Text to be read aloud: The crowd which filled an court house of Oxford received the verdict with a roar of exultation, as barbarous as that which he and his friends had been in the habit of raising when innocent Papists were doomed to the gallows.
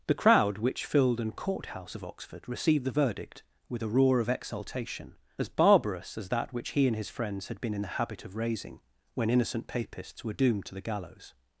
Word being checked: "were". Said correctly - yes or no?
yes